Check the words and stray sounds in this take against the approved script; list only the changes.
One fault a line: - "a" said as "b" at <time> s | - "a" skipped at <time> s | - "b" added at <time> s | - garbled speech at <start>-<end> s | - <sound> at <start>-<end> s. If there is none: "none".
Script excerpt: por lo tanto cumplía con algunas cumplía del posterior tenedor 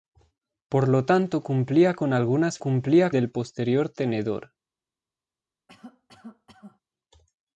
- cough at 5.7-6.8 s